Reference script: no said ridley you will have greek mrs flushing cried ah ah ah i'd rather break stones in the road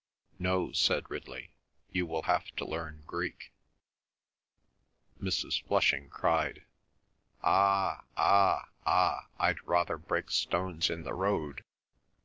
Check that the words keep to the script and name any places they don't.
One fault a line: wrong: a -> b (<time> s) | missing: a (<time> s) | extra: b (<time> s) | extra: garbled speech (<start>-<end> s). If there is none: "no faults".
extra: to learn (2.6 s)